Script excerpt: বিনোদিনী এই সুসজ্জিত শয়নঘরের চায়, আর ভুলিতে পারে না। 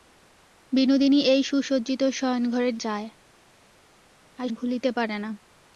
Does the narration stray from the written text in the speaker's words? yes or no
no